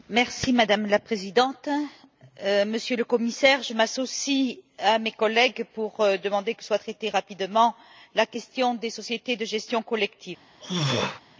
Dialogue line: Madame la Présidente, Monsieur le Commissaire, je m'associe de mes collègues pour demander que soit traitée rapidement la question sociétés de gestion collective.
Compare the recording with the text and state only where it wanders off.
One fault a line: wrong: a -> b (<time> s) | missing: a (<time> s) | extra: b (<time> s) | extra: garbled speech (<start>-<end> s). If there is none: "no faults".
wrong: de -> à (4.8 s)
extra: des (8.7 s)